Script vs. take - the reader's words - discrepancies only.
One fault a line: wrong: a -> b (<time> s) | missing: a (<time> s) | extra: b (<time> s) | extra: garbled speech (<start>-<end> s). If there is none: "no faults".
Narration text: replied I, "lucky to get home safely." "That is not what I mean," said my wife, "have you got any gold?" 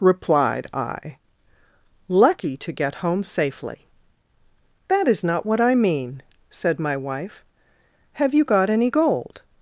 no faults